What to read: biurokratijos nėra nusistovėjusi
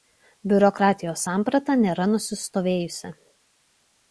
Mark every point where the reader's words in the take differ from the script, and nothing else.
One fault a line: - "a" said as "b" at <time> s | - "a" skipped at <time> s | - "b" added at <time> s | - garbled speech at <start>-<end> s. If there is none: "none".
- "samprata" added at 1.2 s